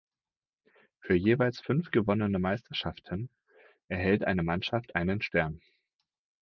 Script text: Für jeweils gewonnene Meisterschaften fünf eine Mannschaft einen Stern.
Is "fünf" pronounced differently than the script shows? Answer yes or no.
yes